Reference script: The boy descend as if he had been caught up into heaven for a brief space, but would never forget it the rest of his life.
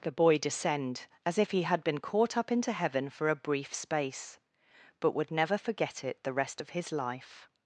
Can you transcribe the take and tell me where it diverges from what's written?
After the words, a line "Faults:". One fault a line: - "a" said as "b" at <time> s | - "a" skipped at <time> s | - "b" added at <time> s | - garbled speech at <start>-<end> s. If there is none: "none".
The boy descend as if he had been caught up into heaven for a brief space, but would never forget it the rest of his life.
Faults:
none